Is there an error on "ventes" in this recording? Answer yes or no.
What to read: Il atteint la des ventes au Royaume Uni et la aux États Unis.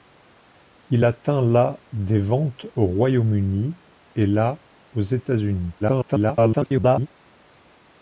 no